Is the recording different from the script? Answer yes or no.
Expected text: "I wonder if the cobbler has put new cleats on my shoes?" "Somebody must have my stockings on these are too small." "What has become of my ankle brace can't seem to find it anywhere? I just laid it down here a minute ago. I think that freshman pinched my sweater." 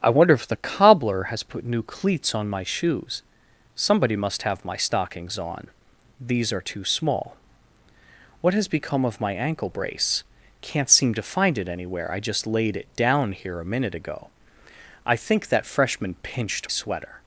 yes